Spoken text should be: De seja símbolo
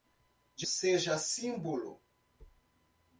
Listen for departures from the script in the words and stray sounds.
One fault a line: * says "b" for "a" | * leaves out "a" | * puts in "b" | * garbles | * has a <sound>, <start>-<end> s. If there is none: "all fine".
all fine